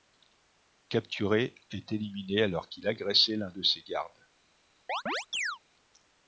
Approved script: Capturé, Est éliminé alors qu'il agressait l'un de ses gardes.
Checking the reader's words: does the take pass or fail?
pass